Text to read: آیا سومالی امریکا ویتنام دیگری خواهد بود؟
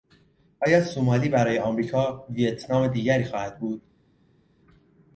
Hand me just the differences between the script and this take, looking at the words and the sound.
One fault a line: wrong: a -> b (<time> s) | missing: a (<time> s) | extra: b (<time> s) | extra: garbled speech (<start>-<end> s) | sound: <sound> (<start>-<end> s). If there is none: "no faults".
extra: برای (1.3 s)